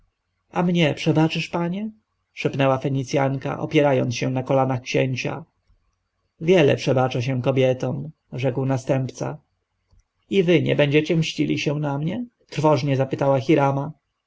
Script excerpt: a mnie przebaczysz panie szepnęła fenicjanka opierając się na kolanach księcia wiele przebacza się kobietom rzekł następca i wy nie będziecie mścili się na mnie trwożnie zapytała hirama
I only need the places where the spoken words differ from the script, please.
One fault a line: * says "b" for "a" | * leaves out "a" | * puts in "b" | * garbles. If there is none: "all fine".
all fine